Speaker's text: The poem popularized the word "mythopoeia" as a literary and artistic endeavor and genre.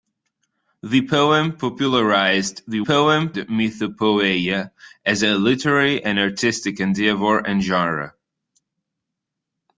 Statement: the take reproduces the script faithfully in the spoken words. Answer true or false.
false